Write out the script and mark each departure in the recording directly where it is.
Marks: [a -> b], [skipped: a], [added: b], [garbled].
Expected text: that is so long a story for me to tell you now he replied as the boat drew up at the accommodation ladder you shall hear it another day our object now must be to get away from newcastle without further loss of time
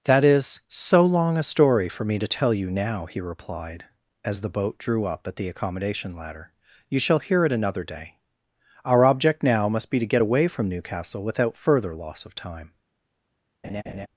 that is so long a story for me to tell you now he replied as the boat drew up at the accommodation ladder you shall hear it another day our object now must be to get away from newcastle without further loss of time